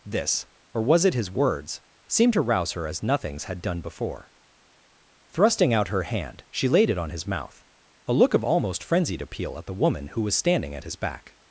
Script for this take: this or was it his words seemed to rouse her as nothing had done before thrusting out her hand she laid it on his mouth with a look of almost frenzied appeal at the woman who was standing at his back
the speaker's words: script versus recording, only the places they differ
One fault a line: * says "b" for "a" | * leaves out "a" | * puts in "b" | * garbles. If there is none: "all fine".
* says "nothings" for "nothing"
* leaves out "with"